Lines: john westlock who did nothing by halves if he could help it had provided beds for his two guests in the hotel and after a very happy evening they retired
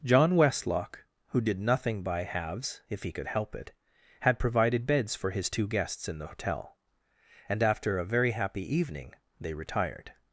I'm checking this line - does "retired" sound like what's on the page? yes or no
yes